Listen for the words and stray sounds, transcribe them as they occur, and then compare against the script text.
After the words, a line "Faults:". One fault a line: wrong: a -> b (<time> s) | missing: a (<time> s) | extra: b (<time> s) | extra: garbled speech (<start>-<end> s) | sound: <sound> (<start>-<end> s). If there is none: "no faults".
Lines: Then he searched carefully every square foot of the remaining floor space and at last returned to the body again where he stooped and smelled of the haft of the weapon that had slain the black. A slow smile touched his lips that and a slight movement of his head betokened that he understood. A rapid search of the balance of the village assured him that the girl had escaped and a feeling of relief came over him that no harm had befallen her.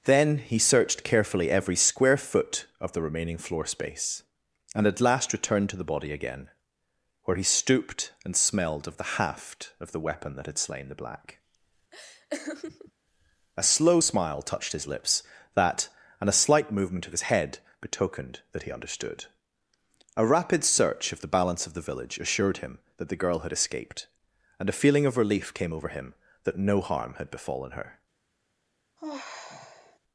Then he searched carefully every square foot of the remaining floor space and at last returned to the body again where he stooped and smelled of the haft of the weapon that had slain the black. A slow smile touched his lips that and a slight movement of his head betokened that he understood. A rapid search of the balance of the village assured him that the girl had escaped and a feeling of relief came over him that no harm had befallen her.
Faults:
sound: laugh (11.9-12.9 s)
sound: sigh (29.0-30.0 s)